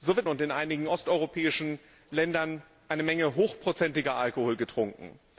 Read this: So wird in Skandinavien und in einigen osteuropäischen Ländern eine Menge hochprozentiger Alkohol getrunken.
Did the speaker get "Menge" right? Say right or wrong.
right